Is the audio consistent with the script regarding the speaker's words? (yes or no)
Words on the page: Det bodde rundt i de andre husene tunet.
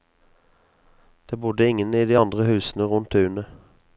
no